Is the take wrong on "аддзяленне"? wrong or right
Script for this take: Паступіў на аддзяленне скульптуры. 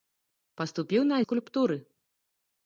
wrong